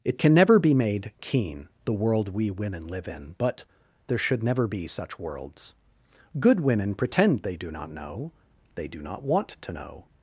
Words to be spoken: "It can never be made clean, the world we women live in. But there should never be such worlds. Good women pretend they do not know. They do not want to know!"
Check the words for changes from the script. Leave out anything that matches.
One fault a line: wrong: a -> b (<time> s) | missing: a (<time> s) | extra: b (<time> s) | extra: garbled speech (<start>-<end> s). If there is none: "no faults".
wrong: clean -> keen (1.2 s)